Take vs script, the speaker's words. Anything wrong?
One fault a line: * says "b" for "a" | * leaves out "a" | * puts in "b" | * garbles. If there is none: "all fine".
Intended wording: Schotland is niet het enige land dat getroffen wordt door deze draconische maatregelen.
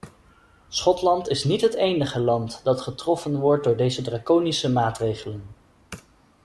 all fine